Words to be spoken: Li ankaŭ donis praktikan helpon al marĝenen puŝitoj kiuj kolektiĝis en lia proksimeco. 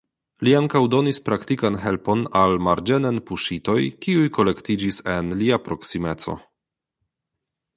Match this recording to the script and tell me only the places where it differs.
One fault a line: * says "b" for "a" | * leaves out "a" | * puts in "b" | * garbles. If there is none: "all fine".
all fine